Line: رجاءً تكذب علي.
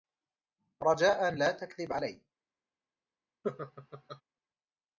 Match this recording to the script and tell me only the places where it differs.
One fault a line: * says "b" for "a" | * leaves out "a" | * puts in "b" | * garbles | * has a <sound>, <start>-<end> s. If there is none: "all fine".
* puts in "لا"
* has a laugh, 3.4-4.2 s